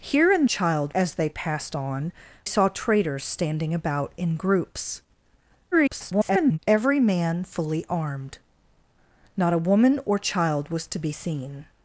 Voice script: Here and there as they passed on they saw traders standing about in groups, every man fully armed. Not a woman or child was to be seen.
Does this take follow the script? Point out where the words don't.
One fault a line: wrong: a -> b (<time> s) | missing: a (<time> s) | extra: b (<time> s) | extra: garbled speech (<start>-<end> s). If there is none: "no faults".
wrong: there -> child (0.4 s)
missing: they (2.1 s)
extra: garbled speech (5.7-6.6 s)